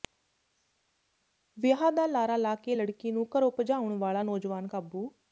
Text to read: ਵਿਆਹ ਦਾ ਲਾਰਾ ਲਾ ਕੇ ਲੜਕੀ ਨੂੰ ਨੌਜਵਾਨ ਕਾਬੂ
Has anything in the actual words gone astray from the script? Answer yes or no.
yes